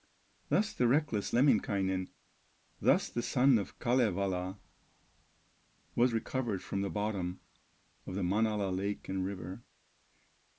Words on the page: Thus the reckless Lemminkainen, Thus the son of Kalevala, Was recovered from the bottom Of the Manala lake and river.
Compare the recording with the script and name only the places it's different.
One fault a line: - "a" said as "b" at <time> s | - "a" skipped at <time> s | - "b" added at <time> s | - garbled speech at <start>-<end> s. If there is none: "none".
none